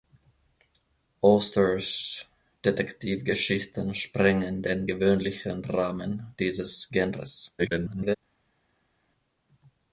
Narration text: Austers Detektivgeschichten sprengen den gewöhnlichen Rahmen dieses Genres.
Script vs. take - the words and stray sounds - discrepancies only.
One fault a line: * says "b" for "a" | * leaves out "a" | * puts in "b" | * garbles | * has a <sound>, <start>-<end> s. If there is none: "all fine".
* garbles